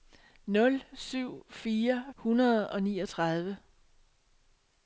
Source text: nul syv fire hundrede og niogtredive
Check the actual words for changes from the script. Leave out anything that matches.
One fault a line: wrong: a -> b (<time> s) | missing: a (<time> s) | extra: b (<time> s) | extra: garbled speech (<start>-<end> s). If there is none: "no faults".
no faults